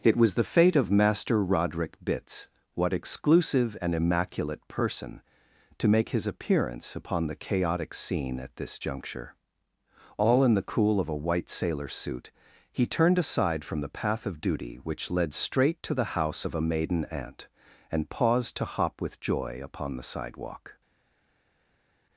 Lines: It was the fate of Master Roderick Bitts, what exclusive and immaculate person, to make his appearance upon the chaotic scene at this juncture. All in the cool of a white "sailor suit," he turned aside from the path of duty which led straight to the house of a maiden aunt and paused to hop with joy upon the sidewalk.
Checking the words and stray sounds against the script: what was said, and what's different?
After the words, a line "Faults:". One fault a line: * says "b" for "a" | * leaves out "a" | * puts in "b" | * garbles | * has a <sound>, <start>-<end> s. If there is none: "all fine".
It was the fate of Master Roderick Bitts, what exclusive and immaculate person, to make his appearance upon the chaotic scene at this juncture. All in the cool of a white "sailor suit," he turned aside from the path of duty which led straight to the house of a maiden aunt and paused to hop with joy upon the sidewalk.
Faults:
all fine